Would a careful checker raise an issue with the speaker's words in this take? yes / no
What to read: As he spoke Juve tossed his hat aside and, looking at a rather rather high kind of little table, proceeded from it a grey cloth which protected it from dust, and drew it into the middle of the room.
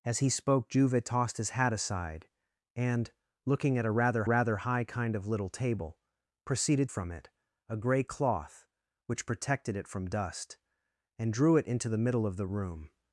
no